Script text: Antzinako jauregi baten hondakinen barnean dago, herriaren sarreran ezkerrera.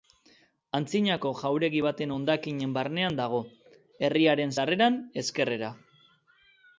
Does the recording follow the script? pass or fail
pass